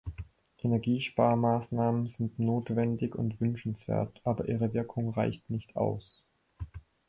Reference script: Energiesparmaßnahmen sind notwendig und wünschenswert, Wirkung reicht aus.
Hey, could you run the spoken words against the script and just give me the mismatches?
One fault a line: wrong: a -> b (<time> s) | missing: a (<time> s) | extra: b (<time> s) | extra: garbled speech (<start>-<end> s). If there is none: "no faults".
extra: aber ihre (4.2 s)
extra: nicht (5.5 s)